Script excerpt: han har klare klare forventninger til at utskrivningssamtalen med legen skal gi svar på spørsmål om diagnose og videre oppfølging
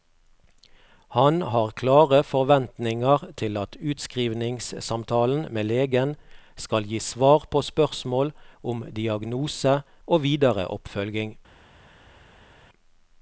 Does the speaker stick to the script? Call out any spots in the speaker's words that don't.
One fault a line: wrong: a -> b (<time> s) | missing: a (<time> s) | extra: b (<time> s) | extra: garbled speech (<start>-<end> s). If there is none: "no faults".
missing: klare (2.2 s)